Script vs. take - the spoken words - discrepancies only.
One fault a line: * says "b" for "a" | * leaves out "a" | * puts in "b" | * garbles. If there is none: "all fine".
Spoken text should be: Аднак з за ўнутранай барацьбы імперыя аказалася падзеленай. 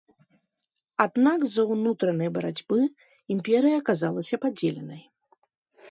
all fine